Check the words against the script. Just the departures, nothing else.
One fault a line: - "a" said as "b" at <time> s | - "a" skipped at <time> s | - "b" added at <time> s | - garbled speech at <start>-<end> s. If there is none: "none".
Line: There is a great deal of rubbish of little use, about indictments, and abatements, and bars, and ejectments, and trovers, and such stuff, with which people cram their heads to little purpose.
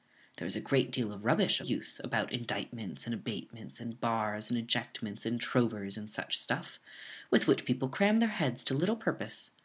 - "of little" skipped at 1.6 s